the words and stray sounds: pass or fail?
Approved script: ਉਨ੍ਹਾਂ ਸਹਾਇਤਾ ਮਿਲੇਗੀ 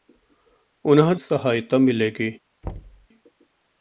fail